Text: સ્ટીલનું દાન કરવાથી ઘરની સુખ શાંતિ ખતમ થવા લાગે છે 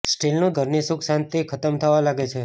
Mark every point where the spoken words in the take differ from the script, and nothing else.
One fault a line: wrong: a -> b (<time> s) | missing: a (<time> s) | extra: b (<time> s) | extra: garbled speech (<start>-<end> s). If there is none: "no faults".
missing: દાન કરવાથી (0.5 s)